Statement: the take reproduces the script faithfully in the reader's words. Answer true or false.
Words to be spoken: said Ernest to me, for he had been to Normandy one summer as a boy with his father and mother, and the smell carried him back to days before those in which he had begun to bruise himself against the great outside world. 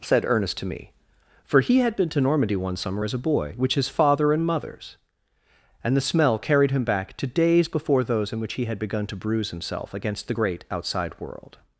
false